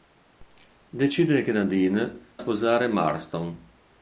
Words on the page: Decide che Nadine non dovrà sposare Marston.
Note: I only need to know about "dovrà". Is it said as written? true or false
false